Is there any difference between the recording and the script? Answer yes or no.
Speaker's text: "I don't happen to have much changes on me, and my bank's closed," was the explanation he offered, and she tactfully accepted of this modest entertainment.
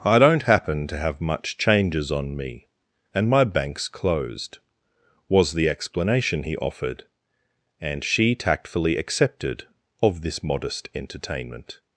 no